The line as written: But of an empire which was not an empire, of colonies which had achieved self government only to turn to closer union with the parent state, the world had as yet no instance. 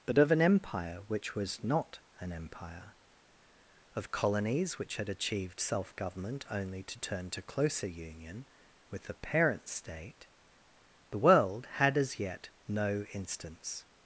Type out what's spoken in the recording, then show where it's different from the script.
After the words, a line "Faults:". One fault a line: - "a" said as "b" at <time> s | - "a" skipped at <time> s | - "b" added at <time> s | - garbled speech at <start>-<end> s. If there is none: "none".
But of an empire which was not an empire, of colonies which had achieved self government only to turn to closer union with the parent state, the world had as yet no instance.
Faults:
none